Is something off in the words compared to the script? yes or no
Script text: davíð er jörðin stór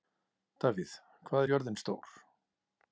yes